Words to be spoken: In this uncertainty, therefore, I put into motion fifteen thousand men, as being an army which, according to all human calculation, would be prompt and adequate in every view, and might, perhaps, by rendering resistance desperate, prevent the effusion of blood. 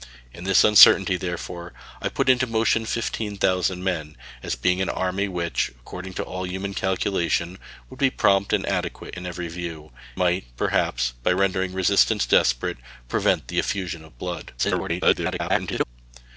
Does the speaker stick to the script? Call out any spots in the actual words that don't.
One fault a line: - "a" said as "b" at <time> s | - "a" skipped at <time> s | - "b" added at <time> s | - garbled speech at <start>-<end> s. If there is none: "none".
- "and" skipped at 9.9 s
- garbled speech at 14.6-15.8 s